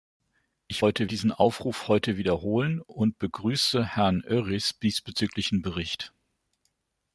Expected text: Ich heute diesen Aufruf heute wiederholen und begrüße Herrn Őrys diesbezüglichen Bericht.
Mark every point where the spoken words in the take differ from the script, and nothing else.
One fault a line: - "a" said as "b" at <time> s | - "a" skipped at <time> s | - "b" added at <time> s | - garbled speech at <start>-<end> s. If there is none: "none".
none